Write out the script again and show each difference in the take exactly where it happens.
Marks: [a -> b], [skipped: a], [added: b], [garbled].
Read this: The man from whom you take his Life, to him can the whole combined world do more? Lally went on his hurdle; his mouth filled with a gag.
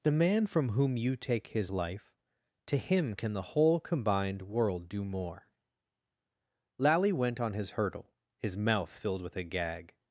The man from whom you take his Life, to him can the whole combined world do more? Lally went on his hurdle; his mouth filled with a gag.